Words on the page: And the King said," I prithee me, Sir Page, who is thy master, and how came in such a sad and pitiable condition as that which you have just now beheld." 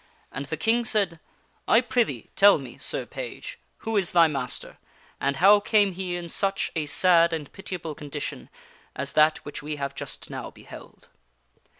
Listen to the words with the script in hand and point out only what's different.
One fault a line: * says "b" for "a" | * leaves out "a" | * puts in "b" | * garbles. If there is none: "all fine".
* puts in "tell"
* puts in "he"
* says "we" for "you"